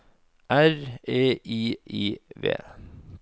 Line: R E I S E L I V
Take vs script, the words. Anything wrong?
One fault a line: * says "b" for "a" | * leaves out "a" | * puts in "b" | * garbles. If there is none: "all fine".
* leaves out "S E L"